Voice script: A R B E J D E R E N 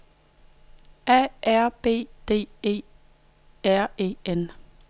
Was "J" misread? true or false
true